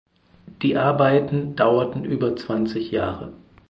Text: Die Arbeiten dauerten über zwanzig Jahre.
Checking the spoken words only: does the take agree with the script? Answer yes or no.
yes